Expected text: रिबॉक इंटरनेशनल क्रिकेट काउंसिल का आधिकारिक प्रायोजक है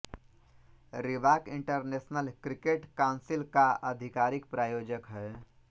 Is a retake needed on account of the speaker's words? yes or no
no